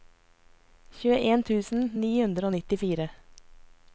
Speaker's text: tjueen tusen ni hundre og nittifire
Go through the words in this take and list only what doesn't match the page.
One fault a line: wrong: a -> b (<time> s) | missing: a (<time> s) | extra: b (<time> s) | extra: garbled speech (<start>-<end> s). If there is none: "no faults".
no faults